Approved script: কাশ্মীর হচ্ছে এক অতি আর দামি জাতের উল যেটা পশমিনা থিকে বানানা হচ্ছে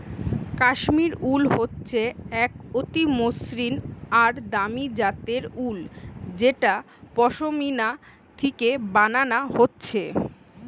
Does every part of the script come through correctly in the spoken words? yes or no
no